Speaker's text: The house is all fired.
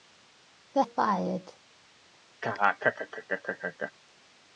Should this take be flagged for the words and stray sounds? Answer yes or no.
yes